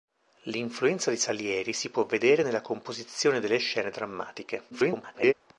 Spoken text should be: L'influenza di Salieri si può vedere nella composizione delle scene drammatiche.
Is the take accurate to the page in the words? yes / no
no